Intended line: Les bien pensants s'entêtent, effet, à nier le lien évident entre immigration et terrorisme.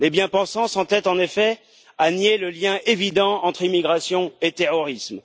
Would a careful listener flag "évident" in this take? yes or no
no